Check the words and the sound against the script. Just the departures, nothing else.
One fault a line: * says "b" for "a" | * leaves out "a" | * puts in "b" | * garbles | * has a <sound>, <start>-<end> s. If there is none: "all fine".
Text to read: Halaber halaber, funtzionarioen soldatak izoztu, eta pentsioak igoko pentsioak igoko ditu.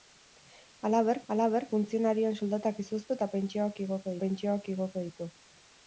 all fine